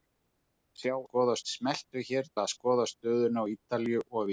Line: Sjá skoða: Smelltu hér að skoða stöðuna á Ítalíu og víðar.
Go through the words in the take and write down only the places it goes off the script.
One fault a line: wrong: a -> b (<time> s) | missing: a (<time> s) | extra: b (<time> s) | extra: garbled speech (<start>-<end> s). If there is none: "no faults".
no faults